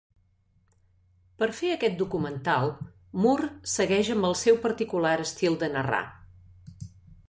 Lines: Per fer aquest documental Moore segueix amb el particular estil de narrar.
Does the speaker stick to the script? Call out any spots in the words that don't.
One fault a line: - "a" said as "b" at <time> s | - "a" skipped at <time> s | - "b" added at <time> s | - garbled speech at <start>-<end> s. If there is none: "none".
- "seu" added at 4.4 s